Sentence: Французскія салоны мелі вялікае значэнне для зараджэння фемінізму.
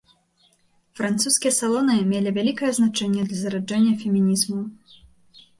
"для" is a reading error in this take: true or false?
false